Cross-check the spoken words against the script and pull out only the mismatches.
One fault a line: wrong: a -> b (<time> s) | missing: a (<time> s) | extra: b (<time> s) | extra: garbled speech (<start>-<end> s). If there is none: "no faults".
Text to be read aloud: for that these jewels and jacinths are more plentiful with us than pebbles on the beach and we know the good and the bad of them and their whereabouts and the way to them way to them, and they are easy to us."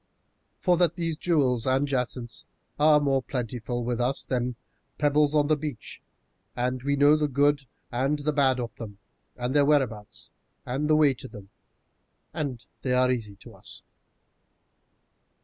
missing: way to them (11.5 s)